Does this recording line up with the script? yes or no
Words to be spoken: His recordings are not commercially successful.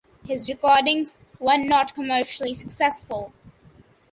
no